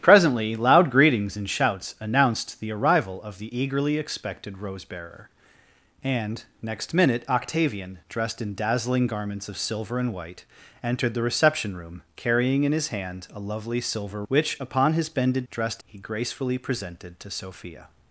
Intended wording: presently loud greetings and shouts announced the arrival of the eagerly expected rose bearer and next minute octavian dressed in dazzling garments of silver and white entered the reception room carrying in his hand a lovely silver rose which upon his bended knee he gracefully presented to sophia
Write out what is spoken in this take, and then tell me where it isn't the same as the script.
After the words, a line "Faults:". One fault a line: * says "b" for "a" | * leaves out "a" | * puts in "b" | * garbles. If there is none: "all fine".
presently loud greetings and shouts announced the arrival of the eagerly expected rose bearer and next minute octavian dressed in dazzling garments of silver and white entered the reception room carrying in his hand a lovely silver which upon his bended dressed he gracefully presented to sophia
Faults:
* leaves out "rose"
* says "dressed" for "knee"